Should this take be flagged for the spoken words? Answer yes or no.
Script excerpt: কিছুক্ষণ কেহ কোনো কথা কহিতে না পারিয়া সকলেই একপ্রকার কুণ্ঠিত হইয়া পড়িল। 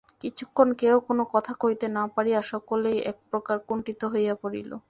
no